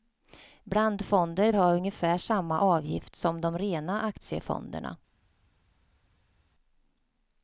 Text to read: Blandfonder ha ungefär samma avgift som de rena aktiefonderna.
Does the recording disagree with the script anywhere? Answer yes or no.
no